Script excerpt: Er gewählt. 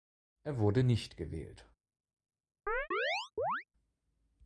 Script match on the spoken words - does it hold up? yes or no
no